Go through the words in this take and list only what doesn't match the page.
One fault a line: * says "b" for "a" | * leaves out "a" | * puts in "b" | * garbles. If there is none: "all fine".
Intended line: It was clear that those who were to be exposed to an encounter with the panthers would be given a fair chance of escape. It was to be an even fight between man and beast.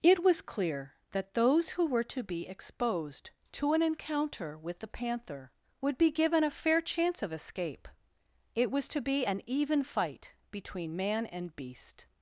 * says "panther" for "panthers"